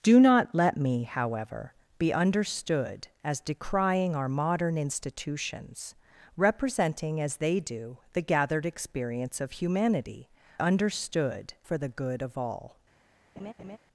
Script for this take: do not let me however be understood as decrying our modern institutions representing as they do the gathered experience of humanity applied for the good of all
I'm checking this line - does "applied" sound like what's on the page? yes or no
no